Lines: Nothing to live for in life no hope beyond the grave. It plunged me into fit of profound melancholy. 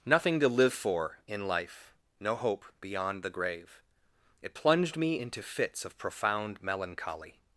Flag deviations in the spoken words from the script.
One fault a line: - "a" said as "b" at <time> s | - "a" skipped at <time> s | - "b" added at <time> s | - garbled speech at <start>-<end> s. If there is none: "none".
- "fit" said as "fits" at 5.4 s